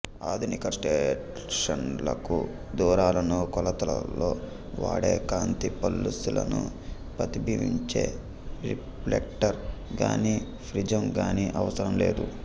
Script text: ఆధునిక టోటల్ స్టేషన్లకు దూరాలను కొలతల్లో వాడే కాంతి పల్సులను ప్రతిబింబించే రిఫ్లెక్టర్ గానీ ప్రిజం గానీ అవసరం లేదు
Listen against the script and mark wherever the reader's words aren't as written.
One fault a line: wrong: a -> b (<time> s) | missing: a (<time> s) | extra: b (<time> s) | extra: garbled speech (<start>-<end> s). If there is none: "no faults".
missing: టోటల్ (0.7 s)